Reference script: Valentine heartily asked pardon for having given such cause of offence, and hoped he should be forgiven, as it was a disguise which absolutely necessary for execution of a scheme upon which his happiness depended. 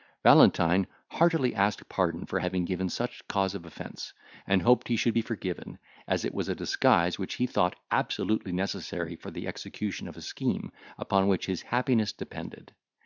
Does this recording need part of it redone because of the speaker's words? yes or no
yes